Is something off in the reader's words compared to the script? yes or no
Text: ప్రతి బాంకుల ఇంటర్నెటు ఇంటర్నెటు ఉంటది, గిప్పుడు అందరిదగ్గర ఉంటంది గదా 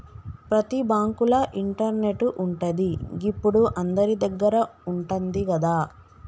yes